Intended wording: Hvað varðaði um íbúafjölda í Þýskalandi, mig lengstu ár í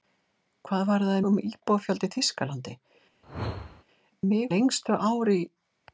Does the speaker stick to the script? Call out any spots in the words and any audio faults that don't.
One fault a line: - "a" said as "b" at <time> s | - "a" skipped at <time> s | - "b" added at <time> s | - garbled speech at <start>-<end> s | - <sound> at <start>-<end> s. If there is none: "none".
- whoosh at 3.2-3.8 s